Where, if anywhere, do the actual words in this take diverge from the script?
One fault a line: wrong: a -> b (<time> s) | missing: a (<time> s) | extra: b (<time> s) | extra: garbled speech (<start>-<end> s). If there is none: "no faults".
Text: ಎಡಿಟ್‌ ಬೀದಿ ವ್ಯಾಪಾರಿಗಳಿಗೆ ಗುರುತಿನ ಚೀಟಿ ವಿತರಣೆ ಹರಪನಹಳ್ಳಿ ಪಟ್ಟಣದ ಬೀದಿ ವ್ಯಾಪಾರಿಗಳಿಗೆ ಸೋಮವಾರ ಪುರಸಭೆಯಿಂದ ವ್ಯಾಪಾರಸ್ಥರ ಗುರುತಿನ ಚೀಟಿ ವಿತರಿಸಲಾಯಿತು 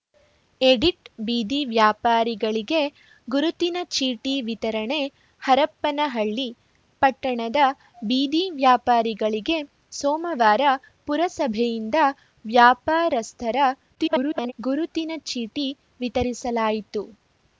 extra: garbled speech (13.9-14.5 s)